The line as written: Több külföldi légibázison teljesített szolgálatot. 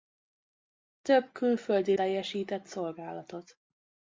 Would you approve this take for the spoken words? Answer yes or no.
no